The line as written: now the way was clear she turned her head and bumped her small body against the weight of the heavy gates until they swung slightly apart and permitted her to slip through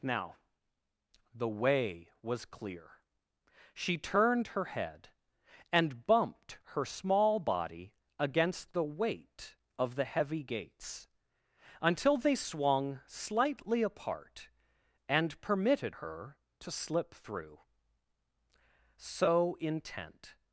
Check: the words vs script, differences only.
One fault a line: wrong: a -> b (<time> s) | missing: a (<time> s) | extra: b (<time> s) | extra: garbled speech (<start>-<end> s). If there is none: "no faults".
extra: so intent (19.0 s)